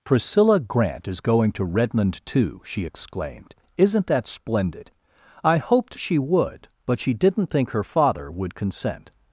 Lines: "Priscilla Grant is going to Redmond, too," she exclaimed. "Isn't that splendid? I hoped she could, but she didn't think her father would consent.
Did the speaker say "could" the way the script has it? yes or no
no